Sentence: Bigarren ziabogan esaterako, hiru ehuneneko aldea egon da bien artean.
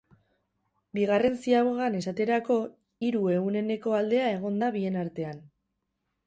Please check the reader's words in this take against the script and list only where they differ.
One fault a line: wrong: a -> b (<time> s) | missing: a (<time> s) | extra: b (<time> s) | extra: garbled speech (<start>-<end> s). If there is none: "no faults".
no faults